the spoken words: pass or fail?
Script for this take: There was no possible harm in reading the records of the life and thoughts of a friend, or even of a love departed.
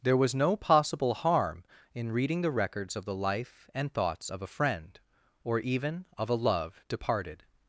pass